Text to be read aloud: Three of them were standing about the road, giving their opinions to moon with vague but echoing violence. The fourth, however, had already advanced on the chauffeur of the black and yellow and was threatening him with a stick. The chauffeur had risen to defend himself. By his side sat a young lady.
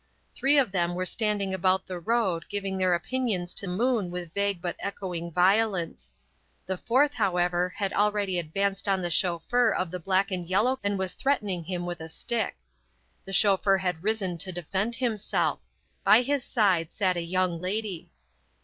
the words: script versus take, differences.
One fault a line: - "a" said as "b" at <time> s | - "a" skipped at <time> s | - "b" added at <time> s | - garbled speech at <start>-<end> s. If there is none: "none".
none